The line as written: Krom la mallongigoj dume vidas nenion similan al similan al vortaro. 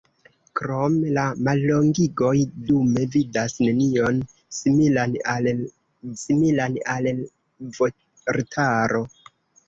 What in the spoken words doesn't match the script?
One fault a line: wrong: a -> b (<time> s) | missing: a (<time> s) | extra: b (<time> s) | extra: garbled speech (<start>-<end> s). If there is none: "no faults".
no faults